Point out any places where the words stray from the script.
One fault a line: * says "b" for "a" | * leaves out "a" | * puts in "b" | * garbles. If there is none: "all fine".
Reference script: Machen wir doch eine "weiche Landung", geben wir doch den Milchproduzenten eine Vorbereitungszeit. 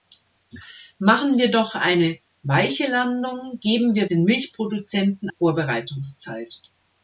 * leaves out "doch"
* leaves out "eine"